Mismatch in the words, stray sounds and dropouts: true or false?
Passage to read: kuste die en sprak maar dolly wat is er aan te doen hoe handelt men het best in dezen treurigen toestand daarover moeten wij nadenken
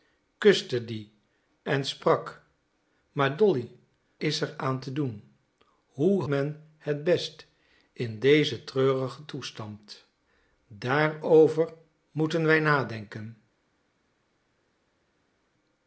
true